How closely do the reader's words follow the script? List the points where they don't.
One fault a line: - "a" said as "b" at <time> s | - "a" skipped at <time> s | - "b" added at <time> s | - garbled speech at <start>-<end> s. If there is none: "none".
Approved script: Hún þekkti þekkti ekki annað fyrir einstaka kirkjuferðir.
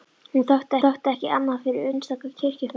none